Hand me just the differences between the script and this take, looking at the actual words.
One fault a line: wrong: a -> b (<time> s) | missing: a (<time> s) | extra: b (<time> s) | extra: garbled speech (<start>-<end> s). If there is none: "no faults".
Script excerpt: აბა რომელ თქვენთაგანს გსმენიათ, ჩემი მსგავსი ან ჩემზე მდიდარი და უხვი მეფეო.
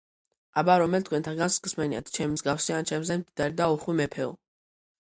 no faults